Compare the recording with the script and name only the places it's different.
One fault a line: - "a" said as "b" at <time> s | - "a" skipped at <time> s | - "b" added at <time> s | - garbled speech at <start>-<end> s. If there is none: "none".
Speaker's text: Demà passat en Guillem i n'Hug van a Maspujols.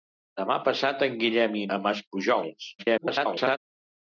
- "n'Hug van" skipped at 1.7 s
- garbled speech at 2.8-3.6 s